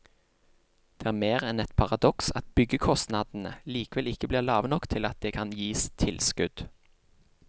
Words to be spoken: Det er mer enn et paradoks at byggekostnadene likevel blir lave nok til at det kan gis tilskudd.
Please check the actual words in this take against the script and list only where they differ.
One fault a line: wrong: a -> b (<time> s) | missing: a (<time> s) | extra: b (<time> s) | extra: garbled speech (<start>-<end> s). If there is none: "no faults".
extra: ikke (4.1 s)